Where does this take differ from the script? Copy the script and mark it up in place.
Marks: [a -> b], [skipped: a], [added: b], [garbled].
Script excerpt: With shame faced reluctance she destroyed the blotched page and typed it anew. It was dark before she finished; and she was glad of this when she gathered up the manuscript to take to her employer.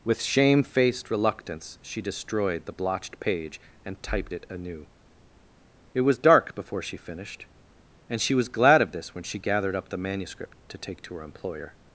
With shame faced reluctance she destroyed the blotched page and typed it anew. It was dark before she finished; and she was glad of this when she gathered up the manuscript to take to her employer.